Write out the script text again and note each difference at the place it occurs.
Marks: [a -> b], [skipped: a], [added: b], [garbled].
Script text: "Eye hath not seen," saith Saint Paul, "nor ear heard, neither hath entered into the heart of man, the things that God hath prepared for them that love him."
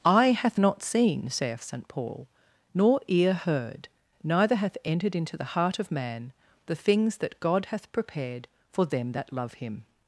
"Eye hath not seen," saith Saint Paul, "nor ear heard, neither hath entered into the heart of man, the things that God hath prepared for them that love him."